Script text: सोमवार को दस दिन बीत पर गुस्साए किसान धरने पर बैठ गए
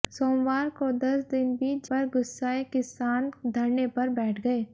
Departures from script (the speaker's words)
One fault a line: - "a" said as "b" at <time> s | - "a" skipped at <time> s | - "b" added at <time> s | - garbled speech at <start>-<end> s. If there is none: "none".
none